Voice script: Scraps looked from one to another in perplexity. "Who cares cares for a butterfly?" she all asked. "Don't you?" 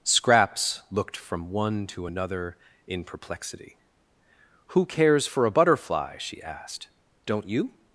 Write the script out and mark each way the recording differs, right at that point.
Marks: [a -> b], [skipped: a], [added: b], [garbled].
Scraps looked from one to another in perplexity. "Who cares [skipped: cares] for a butterfly?" she [skipped: all] asked. "Don't you?"